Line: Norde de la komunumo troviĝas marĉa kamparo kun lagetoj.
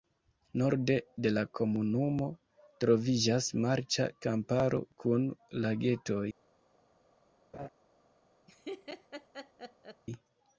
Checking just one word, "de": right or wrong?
right